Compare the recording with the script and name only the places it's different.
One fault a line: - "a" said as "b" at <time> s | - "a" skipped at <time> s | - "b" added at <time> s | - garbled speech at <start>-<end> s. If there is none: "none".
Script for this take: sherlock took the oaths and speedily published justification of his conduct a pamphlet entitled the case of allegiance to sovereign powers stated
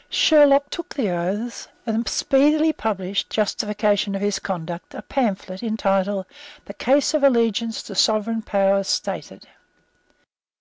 none